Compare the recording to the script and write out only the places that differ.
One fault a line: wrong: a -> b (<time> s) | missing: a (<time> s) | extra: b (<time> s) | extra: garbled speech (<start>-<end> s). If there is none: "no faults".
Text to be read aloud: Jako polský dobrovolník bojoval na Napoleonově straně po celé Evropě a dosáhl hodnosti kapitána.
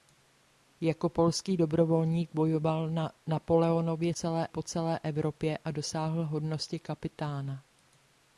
wrong: straně -> celé (4.1 s)